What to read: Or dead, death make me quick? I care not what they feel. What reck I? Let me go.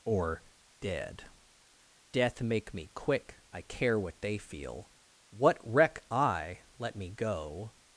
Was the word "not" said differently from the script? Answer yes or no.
yes